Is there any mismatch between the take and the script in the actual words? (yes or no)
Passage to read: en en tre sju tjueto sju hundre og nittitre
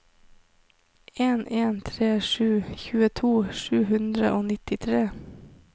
no